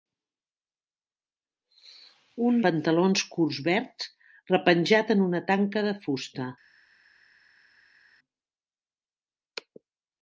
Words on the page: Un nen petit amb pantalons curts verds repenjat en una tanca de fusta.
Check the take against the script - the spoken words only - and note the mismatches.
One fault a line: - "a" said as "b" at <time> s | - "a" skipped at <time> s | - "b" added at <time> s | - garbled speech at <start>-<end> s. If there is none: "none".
- "nen petit amb" skipped at 2.6 s